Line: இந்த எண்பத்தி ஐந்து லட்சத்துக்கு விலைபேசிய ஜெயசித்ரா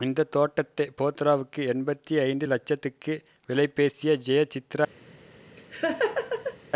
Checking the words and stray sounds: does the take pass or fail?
fail